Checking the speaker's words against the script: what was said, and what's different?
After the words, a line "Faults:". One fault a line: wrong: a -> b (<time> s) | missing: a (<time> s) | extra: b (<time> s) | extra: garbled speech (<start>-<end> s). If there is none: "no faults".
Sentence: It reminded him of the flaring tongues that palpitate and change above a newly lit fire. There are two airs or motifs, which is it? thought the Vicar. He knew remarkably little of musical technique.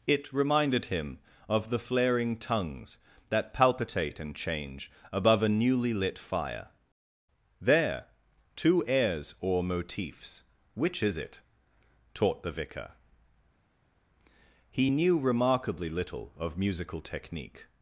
It reminded him of the flaring tongues that palpitate and change above a newly lit fire. There two airs or motifs, which is it? taught the Vicar. He knew remarkably little of musical technique.
Faults:
missing: are (8.1 s)
wrong: thought -> taught (12.1 s)